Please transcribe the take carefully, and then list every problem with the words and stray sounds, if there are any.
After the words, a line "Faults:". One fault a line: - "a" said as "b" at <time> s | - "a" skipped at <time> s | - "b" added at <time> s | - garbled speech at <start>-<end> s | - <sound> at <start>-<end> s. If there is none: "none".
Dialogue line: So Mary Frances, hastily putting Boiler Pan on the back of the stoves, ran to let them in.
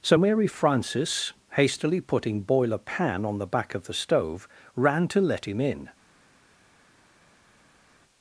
So Mary Frances, hastily putting Boiler Pan on the back of the stove, ran to let him in.
Faults:
- "stoves" said as "stove" at 3.9 s
- "them" said as "him" at 5.5 s